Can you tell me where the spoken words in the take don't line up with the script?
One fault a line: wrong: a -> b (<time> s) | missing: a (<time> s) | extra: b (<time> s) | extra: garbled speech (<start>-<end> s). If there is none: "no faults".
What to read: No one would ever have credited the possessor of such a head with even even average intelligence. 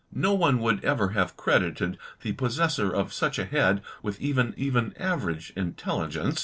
no faults